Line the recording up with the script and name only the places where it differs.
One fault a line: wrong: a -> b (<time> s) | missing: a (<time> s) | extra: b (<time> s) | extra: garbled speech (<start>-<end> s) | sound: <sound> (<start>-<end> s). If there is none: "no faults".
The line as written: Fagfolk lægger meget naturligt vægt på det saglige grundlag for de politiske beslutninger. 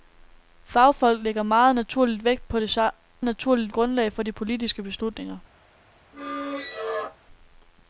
wrong: saglige -> naturligt (3.2 s)
sound: squeak (6.1-7.2 s)